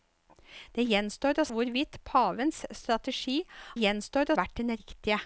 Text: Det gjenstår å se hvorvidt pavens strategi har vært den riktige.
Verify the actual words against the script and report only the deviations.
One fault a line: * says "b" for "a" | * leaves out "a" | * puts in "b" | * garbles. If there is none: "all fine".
* leaves out "se"
* says "gjenstår" for "har"